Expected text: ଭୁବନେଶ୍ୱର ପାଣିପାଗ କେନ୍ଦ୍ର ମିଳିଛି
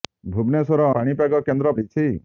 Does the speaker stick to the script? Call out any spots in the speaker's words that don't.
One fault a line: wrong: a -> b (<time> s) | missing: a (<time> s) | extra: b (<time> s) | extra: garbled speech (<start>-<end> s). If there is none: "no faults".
no faults